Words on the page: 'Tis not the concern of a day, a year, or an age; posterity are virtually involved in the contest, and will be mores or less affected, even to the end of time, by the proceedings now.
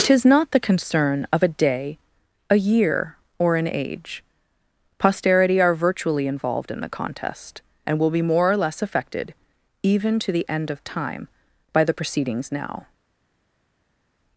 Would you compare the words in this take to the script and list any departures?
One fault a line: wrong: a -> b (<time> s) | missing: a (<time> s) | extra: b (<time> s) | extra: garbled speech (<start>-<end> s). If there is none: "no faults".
wrong: mores -> more (8.2 s)